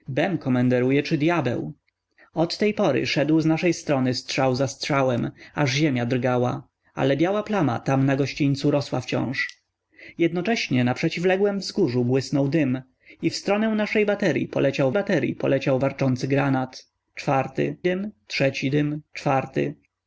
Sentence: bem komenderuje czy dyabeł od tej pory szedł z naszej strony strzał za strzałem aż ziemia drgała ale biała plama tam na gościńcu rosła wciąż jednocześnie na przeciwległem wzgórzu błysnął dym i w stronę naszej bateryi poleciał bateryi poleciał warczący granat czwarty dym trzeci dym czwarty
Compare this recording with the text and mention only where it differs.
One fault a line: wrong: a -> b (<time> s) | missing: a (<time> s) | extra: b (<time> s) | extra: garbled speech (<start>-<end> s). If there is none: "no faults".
no faults